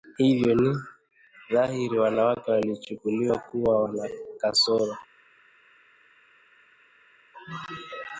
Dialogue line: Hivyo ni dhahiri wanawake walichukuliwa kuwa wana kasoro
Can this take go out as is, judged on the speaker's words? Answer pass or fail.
pass